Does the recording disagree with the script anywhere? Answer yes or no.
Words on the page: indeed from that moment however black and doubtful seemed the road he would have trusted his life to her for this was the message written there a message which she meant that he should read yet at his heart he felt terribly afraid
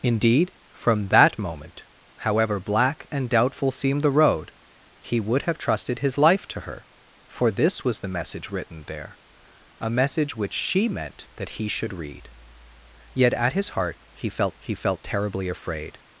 yes